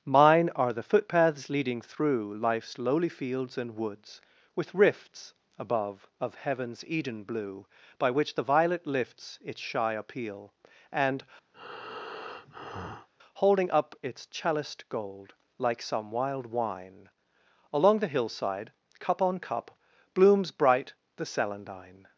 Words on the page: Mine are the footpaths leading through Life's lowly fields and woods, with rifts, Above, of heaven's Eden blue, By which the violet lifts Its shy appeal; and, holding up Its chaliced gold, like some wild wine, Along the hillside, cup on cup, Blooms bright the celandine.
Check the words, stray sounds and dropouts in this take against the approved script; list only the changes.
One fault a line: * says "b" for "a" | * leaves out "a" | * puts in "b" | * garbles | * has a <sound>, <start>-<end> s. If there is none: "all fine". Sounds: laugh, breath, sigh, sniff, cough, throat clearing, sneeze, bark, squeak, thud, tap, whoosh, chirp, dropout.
* has a breath, 11.5-13.1 s